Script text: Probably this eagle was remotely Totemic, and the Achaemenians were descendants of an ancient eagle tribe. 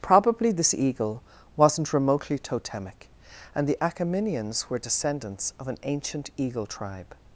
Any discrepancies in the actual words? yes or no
yes